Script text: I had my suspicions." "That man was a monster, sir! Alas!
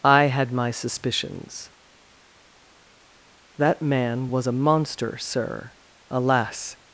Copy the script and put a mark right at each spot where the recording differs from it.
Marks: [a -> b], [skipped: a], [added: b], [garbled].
I had my suspicions." "That man was a monster, sir! Alas!